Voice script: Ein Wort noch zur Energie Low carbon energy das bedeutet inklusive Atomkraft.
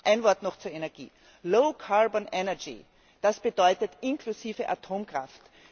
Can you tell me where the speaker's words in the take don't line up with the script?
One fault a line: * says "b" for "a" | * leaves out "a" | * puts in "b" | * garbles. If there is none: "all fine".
all fine